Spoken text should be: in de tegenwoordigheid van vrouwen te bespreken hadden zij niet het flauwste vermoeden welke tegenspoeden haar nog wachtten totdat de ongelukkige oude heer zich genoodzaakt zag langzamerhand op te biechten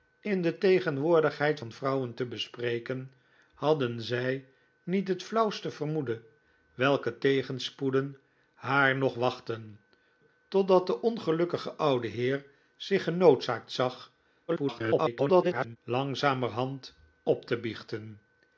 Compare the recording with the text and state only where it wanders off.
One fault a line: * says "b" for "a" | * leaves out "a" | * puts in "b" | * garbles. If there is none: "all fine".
* garbles